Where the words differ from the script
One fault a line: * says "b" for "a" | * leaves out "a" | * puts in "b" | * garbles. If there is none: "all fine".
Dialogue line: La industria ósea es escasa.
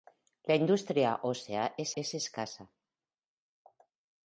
* puts in "es"